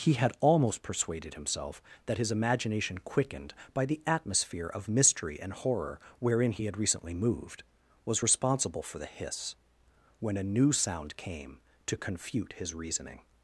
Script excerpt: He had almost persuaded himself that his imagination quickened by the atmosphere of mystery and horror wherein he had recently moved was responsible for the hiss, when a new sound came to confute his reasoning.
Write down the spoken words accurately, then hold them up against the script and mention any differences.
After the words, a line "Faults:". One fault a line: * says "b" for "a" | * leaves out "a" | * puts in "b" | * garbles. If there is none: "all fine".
He had almost persuaded himself that his imagination quickened by the atmosphere of mystery and horror wherein he had recently moved was responsible for the hiss, when a new sound came to confute his reasoning.
Faults:
all fine